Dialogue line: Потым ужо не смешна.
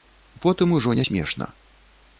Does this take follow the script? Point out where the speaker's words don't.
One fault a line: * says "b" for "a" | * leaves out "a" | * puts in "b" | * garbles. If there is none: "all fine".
all fine